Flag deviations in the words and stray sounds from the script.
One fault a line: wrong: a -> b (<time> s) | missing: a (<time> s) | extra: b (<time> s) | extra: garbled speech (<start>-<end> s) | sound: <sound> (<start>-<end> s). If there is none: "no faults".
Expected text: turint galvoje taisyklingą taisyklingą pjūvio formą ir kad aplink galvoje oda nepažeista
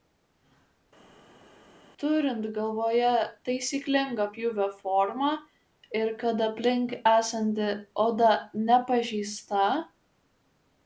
missing: taisyklingą (4.3 s)
wrong: galvoje -> esanti (7.1 s)